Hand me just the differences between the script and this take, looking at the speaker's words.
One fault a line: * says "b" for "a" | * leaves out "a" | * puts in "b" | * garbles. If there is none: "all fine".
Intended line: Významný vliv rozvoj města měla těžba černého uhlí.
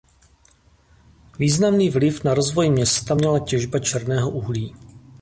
* puts in "na"